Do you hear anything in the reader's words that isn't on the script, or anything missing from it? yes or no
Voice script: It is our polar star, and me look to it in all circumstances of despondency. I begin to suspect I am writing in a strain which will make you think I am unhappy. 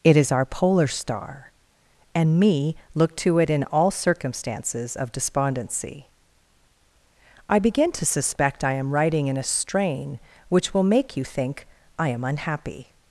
no